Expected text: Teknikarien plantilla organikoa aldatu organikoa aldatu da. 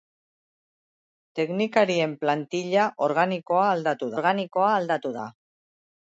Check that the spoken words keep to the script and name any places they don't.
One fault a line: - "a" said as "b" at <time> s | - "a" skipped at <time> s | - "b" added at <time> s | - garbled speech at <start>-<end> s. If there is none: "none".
none